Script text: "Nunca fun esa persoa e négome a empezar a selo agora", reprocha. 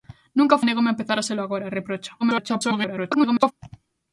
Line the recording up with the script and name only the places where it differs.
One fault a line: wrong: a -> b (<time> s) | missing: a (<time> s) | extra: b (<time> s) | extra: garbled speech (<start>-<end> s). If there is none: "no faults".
missing: fun esa persoa (0.6 s)
extra: garbled speech (2.2-3.5 s)